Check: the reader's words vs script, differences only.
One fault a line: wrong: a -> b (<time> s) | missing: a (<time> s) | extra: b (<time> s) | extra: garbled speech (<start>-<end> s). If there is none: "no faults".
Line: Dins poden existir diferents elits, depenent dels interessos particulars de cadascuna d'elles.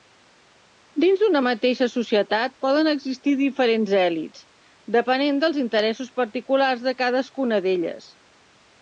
extra: d'una mateixa societat (1.2 s)